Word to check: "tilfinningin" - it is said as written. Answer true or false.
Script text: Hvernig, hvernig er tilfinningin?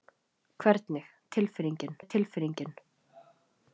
true